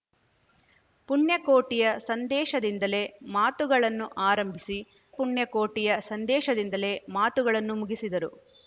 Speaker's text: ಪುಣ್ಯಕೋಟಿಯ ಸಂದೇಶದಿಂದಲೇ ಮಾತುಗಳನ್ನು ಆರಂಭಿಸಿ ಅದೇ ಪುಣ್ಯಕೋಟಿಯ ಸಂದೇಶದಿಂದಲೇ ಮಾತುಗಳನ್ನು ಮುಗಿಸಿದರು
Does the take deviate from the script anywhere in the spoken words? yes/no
yes